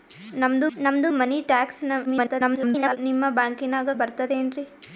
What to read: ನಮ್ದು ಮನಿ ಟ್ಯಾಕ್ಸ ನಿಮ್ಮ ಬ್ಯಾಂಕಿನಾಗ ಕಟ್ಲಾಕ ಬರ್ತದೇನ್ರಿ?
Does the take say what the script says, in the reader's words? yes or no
no